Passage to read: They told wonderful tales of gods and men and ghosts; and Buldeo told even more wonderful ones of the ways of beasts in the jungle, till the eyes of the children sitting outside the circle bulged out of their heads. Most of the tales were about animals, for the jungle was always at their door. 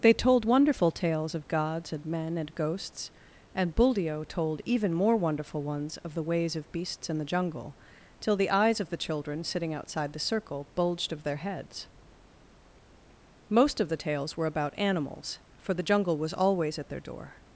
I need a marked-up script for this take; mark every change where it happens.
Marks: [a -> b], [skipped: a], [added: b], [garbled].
They told wonderful tales of gods and men and ghosts; and Buldeo told even more wonderful ones of the ways of beasts in the jungle, till the eyes of the children sitting outside the circle bulged [skipped: out] of their heads. Most of the tales were about animals, for the jungle was always at their door.